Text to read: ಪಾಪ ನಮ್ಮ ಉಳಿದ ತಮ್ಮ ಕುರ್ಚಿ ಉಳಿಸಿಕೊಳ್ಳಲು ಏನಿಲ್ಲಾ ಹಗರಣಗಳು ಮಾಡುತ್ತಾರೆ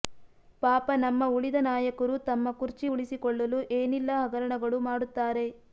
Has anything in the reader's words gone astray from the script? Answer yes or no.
yes